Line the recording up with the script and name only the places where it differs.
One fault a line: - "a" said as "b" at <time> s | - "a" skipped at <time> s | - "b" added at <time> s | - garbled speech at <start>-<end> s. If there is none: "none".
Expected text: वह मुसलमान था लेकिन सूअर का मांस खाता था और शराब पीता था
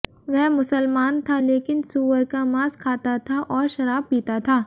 none